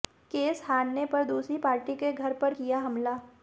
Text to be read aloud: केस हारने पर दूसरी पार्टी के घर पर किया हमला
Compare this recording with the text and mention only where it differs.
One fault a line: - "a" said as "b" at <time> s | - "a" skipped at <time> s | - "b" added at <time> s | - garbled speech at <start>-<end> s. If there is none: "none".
none